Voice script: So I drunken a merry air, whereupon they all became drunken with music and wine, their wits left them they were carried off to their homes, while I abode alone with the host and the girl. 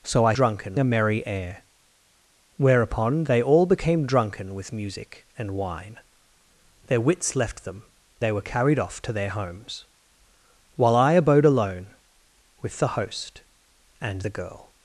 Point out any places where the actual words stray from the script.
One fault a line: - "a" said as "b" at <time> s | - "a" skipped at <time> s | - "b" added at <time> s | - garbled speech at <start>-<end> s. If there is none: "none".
none